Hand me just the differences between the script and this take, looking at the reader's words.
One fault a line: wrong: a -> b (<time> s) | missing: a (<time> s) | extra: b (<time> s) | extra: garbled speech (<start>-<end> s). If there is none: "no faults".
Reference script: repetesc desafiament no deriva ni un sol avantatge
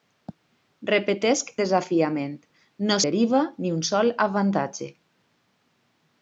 no faults